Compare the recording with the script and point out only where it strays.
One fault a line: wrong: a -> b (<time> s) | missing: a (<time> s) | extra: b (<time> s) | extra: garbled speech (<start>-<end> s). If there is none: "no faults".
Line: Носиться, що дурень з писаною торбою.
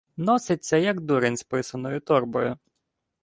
wrong: що -> як (0.8 s)